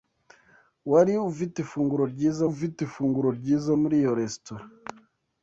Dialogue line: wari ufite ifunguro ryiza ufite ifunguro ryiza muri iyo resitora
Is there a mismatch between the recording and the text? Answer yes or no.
no